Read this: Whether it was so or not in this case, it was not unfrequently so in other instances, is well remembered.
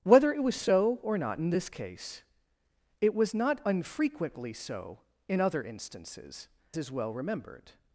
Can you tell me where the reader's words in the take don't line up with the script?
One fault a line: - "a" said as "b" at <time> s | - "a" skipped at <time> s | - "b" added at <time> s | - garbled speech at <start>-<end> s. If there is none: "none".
none